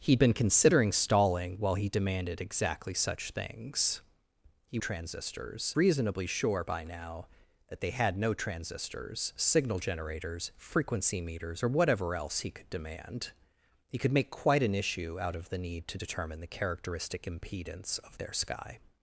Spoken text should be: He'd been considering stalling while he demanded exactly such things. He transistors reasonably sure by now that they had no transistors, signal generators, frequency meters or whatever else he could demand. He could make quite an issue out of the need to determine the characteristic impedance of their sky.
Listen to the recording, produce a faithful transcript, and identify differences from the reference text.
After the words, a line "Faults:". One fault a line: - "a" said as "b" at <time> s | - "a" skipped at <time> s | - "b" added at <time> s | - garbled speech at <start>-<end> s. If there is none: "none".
He'd been considering stalling while he demanded exactly such things. He transistors reasonably sure by now that they had no transistors, signal generators, frequency meters or whatever else he could demand. He could make quite an issue out of the need to determine the characteristic impedance of their sky.
Faults:
none